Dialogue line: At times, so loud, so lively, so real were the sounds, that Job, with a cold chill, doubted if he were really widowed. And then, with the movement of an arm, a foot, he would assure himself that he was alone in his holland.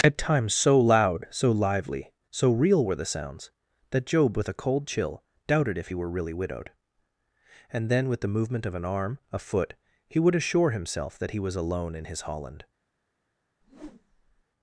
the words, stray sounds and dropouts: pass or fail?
fail